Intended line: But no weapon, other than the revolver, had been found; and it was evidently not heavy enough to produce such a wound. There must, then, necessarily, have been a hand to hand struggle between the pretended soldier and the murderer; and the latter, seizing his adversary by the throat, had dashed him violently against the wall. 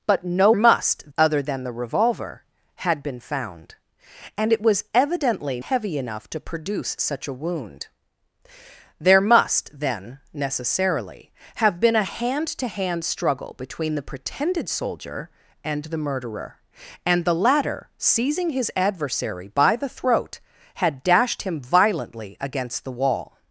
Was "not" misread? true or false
true